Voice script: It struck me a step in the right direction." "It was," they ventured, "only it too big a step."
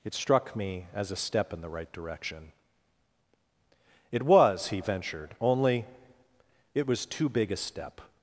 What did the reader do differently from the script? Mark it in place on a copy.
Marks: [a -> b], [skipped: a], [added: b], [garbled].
It struck me [added: as] a step in the right direction." "It was," [they -> he] ventured, "only it [added: was] too big a step."